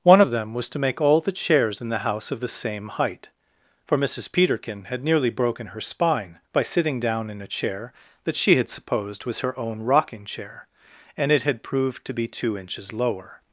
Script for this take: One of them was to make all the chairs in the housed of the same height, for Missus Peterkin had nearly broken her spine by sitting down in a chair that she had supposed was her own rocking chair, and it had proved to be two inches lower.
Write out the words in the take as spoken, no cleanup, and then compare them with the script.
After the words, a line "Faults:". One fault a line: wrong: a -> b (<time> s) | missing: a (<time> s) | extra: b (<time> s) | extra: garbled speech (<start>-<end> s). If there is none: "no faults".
One of them was to make all the chairs in the house of the same height, for Missus Peterkin had nearly broken her spine by sitting down in a chair that she had supposed was her own rocking chair, and it had proved to be two inches lower.
Faults:
wrong: housed -> house (2.0 s)